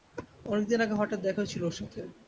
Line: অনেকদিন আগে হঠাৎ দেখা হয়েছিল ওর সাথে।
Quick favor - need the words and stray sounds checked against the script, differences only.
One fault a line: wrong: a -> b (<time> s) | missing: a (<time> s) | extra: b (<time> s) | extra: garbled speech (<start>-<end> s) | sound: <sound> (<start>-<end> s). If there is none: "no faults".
no faults